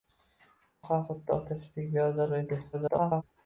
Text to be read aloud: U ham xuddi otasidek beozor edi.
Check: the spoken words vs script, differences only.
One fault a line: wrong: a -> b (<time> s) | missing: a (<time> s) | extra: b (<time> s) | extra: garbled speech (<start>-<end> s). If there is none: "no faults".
extra: garbled speech (2.7-3.2 s)